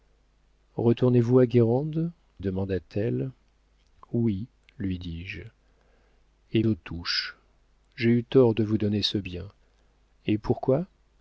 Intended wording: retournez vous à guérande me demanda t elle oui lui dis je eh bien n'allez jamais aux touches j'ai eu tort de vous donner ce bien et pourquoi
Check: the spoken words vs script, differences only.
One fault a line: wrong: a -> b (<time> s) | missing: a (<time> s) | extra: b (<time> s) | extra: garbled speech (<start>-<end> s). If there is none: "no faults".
missing: me (2.1 s)
missing: bien n'allez jamais (6.6 s)